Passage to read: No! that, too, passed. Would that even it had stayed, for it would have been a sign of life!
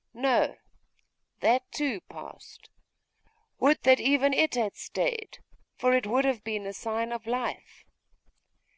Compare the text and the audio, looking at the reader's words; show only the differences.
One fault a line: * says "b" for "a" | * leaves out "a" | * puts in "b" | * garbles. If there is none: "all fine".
all fine